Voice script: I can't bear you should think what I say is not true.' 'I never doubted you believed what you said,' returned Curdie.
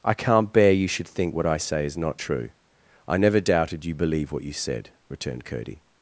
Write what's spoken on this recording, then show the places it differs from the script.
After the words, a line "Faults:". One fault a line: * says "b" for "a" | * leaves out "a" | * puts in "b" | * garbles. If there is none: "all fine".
I can't bear you should think what I say is not true.' 'I never doubted you believe what you said,' returned Curdie.
Faults:
* says "believe" for "believed"